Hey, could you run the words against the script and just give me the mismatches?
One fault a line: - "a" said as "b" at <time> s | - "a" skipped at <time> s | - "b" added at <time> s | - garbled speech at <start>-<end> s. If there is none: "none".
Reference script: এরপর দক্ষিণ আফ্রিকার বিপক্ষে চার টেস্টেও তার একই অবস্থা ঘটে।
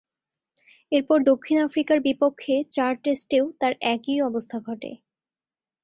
none